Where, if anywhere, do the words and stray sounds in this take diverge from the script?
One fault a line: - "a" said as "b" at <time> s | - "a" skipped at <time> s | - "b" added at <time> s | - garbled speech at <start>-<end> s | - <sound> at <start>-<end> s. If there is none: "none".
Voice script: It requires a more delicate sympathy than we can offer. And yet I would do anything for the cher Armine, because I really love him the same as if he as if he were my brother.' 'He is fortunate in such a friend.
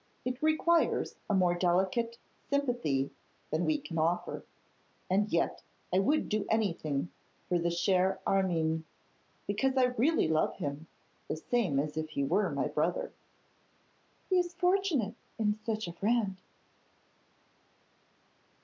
- "as if he" skipped at 12.2 s